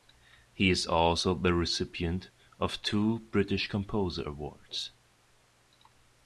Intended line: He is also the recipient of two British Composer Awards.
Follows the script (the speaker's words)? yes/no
yes